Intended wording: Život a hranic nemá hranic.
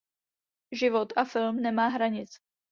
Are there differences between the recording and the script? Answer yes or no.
yes